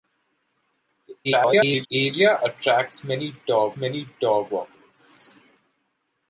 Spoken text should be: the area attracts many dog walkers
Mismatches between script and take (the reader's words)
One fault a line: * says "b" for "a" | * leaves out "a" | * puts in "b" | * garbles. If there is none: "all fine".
* garbles
* puts in "many dog"